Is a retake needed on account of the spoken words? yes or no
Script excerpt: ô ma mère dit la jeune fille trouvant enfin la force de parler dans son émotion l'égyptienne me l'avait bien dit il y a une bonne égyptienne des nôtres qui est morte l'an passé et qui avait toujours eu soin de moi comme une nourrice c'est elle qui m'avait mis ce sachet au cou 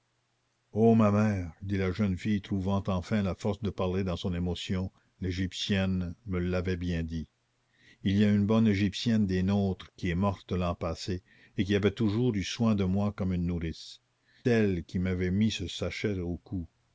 yes